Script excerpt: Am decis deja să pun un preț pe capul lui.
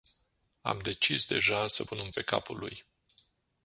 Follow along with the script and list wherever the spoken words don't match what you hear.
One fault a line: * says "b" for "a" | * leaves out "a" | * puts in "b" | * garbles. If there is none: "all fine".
* leaves out "preț"